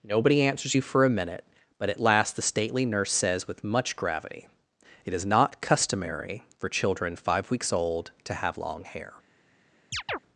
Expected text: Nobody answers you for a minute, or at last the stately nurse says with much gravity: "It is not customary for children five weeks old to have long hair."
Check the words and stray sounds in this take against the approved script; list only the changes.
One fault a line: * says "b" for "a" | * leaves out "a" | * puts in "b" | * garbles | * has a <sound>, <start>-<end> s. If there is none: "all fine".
* says "but" for "or"
* has a chirp, 9.9-10.2 s